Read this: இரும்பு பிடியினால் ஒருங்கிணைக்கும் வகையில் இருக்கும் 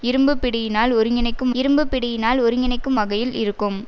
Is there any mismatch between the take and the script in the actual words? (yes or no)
yes